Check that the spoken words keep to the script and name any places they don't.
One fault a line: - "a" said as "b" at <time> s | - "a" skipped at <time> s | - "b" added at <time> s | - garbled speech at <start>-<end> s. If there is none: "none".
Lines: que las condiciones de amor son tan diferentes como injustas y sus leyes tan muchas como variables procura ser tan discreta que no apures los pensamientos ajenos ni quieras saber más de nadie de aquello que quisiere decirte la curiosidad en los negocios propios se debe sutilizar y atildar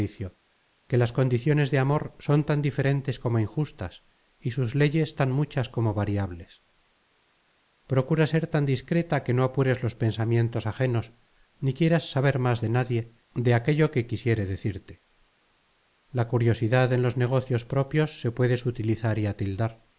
- "debe" said as "puede" at 18.3 s